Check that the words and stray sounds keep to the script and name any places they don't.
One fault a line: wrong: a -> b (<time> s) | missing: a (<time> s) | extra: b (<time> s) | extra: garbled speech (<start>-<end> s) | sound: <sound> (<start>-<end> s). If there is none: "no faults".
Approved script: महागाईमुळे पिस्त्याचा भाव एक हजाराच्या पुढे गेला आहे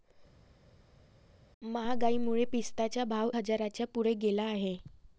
missing: एक (3.3 s)